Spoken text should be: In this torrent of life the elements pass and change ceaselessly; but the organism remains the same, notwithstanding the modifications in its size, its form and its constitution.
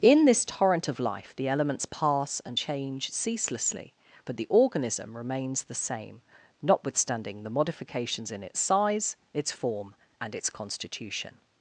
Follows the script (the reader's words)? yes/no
yes